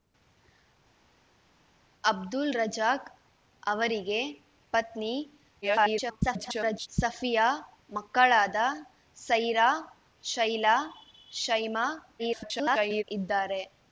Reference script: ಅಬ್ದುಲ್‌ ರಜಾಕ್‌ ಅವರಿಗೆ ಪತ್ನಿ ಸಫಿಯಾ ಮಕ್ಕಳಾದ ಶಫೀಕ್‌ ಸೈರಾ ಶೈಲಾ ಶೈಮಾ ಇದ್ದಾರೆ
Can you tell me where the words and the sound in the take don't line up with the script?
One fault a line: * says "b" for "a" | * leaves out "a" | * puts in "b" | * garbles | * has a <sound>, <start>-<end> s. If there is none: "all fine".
* garbles
* leaves out "ಶಫೀಕ್"
* garbles